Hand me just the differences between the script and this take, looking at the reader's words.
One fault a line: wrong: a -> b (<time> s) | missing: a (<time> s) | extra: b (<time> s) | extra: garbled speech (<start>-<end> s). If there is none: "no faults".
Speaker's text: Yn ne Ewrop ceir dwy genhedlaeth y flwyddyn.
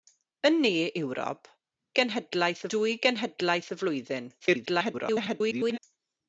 wrong: ceir -> genhedlaeth (2.0 s)
extra: garbled speech (4.4-5.8 s)